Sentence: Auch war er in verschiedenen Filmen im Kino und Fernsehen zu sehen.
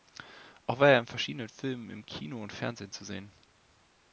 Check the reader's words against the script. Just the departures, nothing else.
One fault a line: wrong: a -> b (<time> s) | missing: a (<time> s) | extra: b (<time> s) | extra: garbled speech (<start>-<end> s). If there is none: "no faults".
no faults